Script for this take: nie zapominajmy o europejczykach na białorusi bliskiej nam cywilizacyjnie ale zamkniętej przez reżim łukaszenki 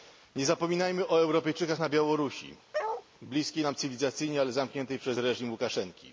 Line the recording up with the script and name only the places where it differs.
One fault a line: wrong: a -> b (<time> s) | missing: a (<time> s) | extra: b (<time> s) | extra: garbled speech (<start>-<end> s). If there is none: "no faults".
no faults